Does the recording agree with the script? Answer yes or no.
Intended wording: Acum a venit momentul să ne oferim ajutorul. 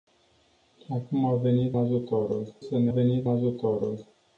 no